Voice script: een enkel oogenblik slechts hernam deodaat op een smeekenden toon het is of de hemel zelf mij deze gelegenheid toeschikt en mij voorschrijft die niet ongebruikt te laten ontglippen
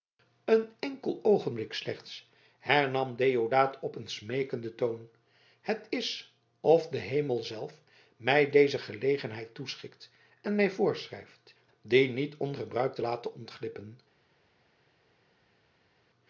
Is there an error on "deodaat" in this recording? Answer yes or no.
no